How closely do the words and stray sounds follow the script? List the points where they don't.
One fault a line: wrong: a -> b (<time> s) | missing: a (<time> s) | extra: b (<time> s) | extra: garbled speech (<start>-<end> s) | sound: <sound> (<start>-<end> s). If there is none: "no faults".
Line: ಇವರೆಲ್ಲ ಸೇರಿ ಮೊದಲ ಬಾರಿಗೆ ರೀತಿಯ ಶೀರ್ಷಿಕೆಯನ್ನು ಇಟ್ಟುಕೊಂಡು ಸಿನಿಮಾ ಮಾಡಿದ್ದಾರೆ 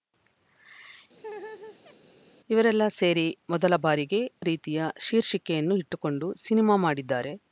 sound: laugh (1.2-2.0 s)